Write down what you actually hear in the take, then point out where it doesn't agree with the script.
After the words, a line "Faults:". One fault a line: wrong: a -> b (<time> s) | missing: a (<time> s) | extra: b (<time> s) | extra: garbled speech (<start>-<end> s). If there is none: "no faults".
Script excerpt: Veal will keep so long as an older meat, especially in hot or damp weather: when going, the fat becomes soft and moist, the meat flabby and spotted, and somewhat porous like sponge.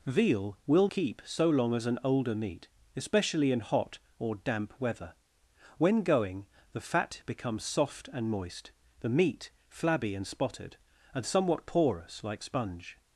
Veal will keep so long as an older meat, especially in hot or damp weather: when going, the fat becomes soft and moist, the meat flabby and spotted, and somewhat porous like sponge.
Faults:
no faults